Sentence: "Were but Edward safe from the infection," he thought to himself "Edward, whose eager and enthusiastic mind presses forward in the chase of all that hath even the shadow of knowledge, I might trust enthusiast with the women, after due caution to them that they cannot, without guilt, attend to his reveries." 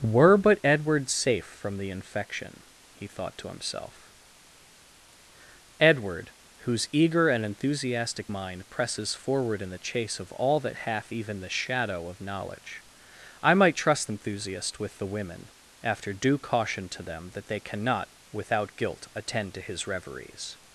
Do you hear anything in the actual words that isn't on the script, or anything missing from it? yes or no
no